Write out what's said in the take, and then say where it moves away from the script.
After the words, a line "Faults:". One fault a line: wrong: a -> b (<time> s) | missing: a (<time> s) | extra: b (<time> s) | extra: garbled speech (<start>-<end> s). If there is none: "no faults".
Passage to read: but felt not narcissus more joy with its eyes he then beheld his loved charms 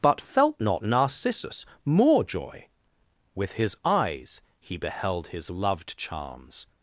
but felt not narcissus more joy with his eyes he beheld his loved charms
Faults:
wrong: its -> his (3.5 s)
missing: then (4.8 s)